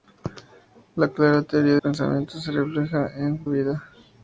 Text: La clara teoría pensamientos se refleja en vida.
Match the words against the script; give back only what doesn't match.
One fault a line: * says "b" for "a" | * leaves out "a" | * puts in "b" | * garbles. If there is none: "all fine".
all fine